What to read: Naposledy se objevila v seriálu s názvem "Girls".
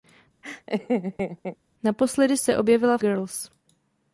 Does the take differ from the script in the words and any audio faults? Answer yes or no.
yes